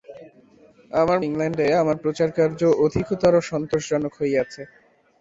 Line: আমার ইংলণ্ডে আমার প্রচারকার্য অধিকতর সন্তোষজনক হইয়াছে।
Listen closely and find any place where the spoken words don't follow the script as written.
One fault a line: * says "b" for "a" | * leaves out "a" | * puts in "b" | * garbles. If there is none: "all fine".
all fine